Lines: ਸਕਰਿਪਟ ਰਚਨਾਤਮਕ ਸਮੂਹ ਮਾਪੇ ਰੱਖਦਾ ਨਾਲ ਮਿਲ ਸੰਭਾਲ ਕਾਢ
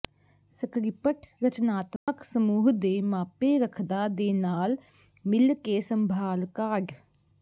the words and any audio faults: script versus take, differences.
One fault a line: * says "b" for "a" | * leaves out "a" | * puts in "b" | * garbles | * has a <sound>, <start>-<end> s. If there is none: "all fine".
* has a dropout, 2.0-2.1 s
* puts in "ਦੇ"
* puts in "ਦੇ"
* puts in "ਕੇ"